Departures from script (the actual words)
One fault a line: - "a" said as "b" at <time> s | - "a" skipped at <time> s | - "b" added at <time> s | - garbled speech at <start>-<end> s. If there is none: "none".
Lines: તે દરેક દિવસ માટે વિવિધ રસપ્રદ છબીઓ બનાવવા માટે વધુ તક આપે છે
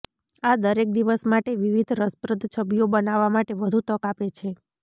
- "તે" said as "આ" at 0.4 s